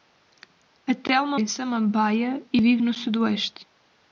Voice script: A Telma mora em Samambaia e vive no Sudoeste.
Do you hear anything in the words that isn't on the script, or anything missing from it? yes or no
yes